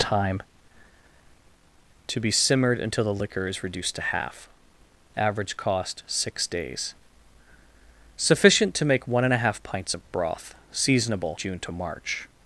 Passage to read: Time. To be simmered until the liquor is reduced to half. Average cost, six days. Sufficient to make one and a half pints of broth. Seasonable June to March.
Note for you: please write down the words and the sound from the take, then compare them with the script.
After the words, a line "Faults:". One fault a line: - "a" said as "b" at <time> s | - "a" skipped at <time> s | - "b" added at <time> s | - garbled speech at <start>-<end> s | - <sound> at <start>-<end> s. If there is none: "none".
Time. To be simmered until the liquor is reduced to half. Average cost, six days. Sufficient to make one and a half pints of broth. Seasonable June to March.
Faults:
none